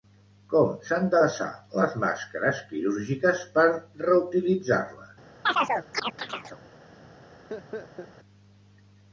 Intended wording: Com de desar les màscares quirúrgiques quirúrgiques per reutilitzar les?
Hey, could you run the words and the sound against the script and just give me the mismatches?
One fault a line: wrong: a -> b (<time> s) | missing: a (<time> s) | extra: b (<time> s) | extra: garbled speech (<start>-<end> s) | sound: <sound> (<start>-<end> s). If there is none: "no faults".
extra: s'han (0.8 s)
missing: quirúrgiques (3.5 s)
sound: chirp (5.4-6.6 s)
sound: laugh (7.5-8.1 s)